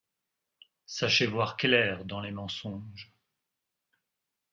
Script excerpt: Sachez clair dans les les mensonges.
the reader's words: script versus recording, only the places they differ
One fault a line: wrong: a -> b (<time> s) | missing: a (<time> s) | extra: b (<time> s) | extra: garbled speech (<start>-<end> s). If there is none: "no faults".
extra: voir (1.3 s)
missing: les (2.3 s)